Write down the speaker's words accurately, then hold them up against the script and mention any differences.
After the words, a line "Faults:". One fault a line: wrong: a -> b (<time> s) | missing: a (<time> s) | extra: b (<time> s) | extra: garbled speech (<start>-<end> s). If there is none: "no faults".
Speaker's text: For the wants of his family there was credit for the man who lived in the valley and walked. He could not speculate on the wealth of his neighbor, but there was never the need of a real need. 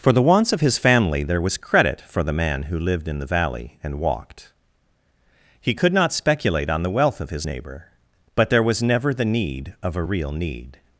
For the wants of his family there was credit for the man who lived in the valley and walked. He could not speculate on the wealth of his neighbor, but there was never the need of a real need.
Faults:
no faults